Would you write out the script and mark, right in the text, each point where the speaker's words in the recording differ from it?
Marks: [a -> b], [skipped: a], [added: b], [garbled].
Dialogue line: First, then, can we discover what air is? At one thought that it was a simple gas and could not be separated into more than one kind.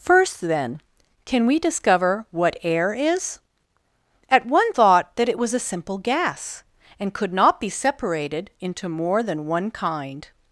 First, then, can we discover what air is? At one thought that it was a simple gas and could not be separated into more than one kind.